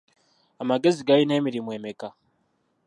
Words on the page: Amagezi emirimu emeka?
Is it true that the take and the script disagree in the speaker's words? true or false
true